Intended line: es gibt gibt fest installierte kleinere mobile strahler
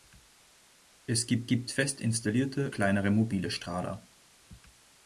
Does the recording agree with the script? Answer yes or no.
yes